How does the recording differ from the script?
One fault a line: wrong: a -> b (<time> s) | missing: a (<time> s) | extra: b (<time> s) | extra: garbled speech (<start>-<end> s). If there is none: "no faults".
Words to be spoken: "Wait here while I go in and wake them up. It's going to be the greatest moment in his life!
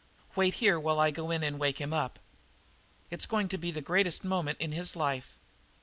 wrong: them -> him (1.8 s)